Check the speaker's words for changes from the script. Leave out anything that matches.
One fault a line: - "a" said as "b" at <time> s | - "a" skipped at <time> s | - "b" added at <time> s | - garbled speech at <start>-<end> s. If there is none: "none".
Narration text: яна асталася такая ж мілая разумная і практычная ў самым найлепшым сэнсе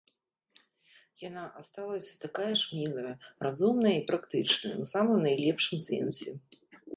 none